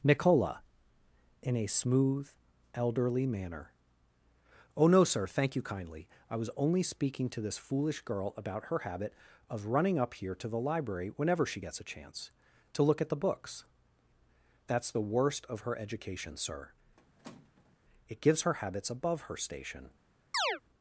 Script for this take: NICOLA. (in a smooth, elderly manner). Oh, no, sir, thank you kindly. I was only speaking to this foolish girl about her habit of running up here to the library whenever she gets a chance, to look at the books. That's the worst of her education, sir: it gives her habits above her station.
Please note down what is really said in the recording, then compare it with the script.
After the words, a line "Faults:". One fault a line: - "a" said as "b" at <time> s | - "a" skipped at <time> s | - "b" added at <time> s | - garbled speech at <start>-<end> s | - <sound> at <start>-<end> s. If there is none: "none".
NICOLA. (in a smooth, elderly manner). Oh, no, sir, thank you kindly. I was only speaking to this foolish girl about her habit of running up here to the library whenever she gets a chance, to look at the books. That's the worst of her education, sir: it gives her habits above her station.
Faults:
- squeak at 17.0-17.8 s
- chirp at 20.3-20.6 s